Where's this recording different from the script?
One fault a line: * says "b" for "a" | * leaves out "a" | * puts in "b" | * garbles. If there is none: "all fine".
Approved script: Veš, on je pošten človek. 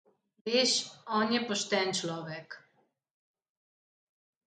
all fine